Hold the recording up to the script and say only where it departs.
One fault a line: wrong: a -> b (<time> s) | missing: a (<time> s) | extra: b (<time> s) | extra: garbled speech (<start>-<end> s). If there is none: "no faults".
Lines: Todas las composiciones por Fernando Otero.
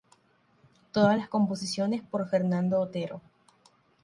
no faults